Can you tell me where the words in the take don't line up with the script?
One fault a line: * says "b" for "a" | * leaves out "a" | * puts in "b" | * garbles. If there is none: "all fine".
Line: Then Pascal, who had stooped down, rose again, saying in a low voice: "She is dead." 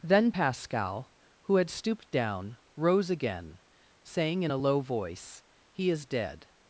* says "He" for "She"